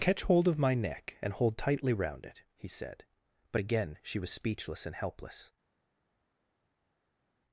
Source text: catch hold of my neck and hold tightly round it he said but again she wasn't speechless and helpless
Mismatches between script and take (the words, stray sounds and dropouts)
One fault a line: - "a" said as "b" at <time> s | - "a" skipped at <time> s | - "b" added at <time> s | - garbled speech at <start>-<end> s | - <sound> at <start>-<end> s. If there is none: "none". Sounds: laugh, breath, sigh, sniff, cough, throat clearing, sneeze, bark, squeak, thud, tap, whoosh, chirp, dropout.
- "wasn't" said as "was" at 4.2 s